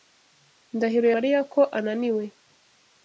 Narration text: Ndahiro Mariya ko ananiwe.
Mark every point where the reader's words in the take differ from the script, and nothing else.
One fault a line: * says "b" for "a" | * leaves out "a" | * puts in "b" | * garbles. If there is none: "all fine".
all fine